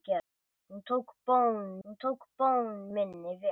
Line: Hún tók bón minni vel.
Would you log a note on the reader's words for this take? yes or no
yes